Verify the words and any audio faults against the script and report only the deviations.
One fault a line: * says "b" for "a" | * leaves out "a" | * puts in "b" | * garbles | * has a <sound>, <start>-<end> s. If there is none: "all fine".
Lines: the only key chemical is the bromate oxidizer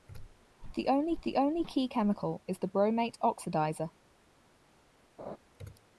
* puts in "the only"
* has a laugh, 5.2-5.4 s